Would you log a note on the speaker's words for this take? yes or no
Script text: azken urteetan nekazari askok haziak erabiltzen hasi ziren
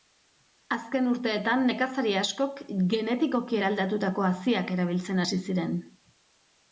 yes